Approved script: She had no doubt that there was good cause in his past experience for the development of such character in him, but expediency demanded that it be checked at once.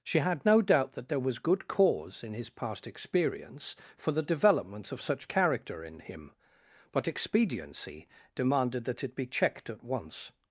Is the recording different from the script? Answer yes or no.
no